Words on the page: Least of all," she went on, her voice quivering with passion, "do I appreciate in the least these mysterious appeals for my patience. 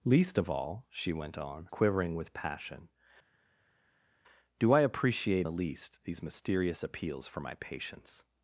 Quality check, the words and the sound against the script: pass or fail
fail